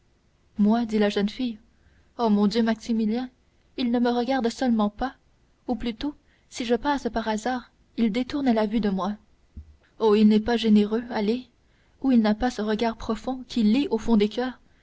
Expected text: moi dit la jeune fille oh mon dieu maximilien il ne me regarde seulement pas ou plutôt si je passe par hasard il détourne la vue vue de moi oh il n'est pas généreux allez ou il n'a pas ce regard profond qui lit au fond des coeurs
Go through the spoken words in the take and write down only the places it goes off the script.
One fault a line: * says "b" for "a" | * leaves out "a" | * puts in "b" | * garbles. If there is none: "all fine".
* leaves out "vue"